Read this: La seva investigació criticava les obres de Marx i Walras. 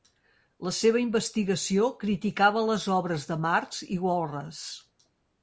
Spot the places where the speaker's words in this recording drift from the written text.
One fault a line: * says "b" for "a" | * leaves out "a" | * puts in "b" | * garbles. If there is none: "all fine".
all fine